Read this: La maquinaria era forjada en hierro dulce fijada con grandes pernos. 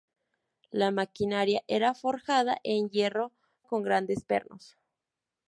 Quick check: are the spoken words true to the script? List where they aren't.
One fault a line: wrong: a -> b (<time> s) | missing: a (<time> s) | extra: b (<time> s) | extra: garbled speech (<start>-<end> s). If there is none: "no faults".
missing: dulce fijada (3.3 s)